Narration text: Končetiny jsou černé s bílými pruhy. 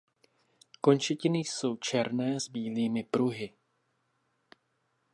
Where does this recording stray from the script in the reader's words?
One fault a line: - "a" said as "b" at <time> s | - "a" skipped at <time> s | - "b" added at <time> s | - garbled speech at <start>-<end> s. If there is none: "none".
none